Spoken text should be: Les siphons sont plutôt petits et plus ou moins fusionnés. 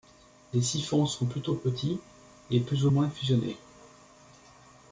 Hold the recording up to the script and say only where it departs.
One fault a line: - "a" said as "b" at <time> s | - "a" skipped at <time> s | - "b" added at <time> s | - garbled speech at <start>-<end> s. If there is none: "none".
none